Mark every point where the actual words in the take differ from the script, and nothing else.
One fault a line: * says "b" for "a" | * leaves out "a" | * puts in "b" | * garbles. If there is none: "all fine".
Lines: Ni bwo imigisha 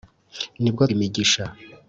all fine